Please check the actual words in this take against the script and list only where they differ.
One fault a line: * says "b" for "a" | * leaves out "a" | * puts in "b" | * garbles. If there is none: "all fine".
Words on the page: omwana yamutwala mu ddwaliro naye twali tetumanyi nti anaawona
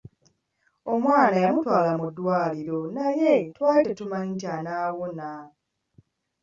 all fine